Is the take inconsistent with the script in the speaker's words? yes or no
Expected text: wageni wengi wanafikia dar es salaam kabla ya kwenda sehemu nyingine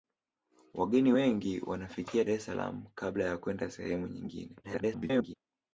yes